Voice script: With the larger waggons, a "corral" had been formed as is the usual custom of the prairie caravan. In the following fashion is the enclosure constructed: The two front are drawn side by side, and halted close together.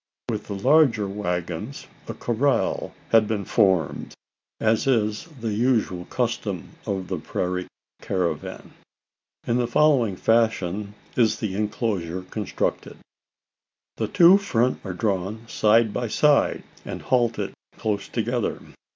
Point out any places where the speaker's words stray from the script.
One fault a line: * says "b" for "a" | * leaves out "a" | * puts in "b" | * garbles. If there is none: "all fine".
all fine